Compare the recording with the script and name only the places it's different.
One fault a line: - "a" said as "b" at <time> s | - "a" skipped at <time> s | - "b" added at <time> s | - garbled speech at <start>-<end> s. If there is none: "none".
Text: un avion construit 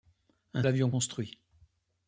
none